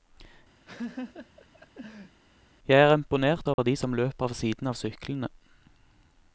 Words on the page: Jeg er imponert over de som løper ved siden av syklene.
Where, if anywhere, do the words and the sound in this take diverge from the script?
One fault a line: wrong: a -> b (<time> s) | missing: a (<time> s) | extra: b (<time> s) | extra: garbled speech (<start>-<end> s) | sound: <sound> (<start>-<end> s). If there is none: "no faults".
sound: laugh (0.7-2.2 s)
sound: dropout (3.5-3.6 s)